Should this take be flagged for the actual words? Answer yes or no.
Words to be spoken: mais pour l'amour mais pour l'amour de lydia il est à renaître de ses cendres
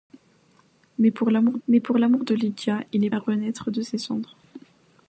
no